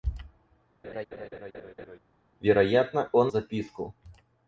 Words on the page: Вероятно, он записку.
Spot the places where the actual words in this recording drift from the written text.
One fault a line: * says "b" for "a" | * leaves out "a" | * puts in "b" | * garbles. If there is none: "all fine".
all fine